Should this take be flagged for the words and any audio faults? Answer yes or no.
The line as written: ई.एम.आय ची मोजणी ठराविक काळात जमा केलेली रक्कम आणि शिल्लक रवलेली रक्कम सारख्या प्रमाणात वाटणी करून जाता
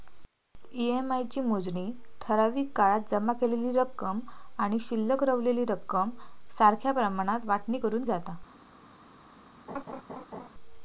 yes